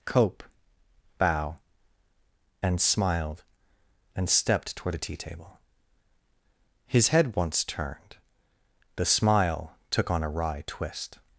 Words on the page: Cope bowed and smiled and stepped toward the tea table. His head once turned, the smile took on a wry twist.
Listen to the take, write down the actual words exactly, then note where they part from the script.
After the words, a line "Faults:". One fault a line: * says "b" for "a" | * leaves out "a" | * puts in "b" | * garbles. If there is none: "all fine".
Cope bow and smiled and stepped toward the tea table. His head once turned, the smile took on a wry twist.
Faults:
* says "bow" for "bowed"